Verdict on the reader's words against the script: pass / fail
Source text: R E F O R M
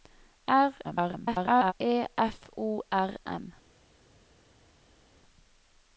fail